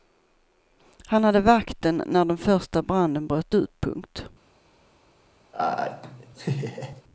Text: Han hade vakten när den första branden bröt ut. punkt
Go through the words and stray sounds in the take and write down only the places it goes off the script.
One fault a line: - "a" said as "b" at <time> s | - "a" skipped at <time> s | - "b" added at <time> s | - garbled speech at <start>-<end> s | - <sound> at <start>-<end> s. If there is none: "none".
- laugh at 5.5-7.0 s